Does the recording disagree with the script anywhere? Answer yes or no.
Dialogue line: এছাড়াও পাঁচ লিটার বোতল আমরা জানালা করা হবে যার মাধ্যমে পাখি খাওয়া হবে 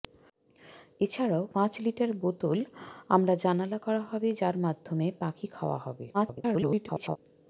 yes